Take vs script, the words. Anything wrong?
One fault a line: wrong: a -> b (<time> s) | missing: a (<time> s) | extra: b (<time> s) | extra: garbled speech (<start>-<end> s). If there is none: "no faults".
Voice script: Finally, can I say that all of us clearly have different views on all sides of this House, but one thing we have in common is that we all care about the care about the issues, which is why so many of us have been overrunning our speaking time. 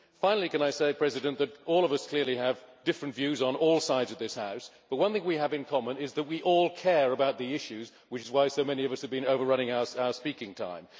missing: care about the (7.5 s)